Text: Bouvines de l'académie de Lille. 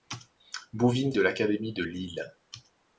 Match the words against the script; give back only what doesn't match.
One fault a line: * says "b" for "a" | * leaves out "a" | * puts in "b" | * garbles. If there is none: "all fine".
all fine